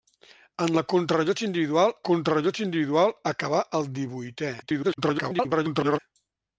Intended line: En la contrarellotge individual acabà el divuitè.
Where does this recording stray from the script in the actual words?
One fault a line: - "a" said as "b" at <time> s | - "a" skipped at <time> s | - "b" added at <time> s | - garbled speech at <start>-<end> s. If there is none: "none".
- "contrarellotge individual" added at 2.1 s
- garbled speech at 4.6-6.0 s